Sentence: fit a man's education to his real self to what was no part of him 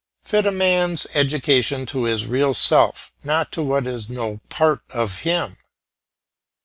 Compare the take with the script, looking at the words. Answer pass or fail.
fail